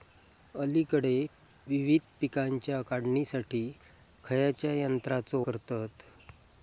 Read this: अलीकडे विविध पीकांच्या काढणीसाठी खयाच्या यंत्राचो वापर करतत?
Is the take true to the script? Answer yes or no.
no